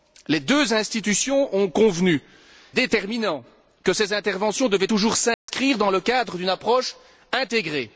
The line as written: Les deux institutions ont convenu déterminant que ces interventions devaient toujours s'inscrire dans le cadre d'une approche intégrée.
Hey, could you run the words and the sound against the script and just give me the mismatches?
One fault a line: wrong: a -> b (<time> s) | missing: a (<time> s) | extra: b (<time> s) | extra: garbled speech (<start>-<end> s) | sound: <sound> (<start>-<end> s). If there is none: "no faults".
sound: dropout (5.3-5.5 s)